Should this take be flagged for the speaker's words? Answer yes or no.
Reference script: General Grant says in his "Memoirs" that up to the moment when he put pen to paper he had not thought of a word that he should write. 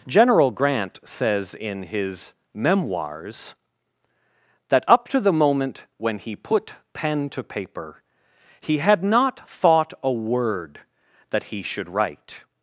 yes